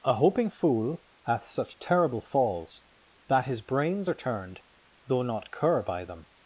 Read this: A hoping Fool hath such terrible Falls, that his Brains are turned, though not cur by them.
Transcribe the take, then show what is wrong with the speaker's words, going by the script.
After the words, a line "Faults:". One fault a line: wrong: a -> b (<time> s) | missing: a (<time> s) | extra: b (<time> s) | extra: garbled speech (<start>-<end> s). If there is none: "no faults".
A hoping Fool hath such terrible Falls, that his Brains are turned, though not cur by them.
Faults:
no faults